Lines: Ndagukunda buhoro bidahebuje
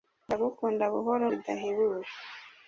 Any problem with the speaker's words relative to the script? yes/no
no